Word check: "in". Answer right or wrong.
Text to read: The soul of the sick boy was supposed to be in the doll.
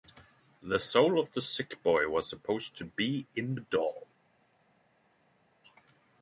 right